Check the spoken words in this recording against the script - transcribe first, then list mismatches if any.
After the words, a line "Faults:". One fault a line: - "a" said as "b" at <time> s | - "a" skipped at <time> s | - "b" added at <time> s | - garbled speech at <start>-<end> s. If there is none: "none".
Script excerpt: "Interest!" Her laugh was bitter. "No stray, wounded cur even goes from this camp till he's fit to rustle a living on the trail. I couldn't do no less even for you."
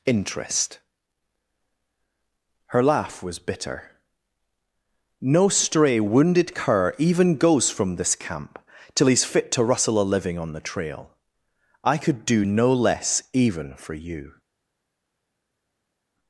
"Interest!" Her laugh was bitter. "No stray, wounded cur even goes from this camp till he's fit to rustle a living on the trail. I could do no less even for you."
Faults:
- "couldn't" said as "could" at 12.0 s